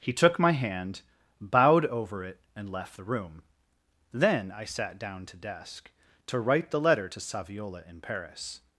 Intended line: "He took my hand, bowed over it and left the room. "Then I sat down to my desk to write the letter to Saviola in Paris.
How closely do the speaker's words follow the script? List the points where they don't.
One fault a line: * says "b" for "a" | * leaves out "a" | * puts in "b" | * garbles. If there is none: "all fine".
* leaves out "my"